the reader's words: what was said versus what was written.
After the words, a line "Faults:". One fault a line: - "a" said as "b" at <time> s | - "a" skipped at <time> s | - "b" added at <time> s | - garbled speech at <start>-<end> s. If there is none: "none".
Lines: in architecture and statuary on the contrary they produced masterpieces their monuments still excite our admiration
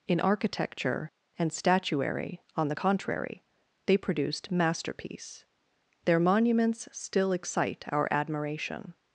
in architecture and statuary on the contrary they produced masterpiece their monuments still excite our admiration
Faults:
- "masterpieces" said as "masterpiece" at 4.5 s